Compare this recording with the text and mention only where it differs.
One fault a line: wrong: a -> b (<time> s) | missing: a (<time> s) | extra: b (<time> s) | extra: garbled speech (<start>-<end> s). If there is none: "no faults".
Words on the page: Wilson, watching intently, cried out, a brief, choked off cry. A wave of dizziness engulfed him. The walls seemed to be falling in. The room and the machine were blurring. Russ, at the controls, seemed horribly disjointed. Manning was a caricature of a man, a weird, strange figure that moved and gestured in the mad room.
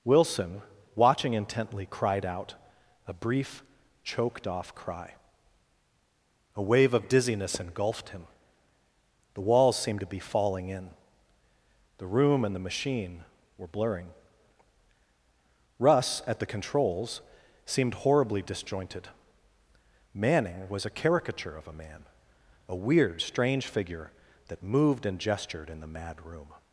no faults